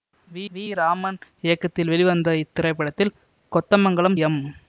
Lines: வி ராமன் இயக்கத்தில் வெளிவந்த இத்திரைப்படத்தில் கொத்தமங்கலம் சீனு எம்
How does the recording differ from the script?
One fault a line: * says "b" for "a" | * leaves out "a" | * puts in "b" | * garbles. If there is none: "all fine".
* puts in "வி"
* leaves out "சீனு"